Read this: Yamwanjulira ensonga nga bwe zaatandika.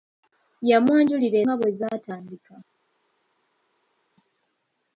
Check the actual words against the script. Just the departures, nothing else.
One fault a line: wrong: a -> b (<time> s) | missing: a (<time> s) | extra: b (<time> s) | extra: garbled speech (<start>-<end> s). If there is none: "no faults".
missing: ensonga (1.4 s)